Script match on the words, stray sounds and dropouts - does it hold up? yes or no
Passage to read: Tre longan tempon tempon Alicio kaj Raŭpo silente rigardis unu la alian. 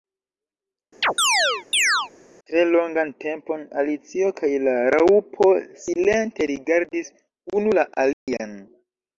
no